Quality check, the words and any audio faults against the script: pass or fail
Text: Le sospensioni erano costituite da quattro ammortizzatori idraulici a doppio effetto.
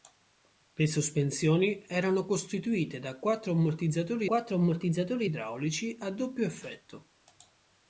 fail